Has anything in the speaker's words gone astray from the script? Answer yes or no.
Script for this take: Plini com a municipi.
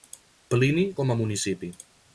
no